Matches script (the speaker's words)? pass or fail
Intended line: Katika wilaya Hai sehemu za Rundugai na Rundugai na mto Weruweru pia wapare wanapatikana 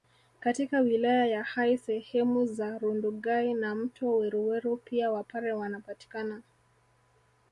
fail